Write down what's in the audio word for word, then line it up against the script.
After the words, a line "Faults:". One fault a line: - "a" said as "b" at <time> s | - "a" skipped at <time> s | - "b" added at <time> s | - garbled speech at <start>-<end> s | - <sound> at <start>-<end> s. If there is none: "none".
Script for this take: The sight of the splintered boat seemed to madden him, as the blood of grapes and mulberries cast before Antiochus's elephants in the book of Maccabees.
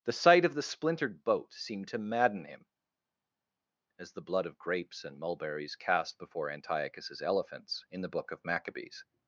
The sight of the splintered boat seemed to madden him, as the blood of grapes and mulberries cast before Antiochus's elephants in the book of Maccabees.
Faults:
none